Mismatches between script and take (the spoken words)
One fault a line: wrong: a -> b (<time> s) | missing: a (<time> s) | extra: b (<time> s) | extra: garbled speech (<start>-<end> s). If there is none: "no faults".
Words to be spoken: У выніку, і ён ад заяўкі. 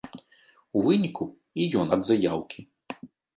no faults